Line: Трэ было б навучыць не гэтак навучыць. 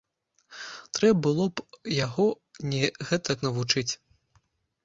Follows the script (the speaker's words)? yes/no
no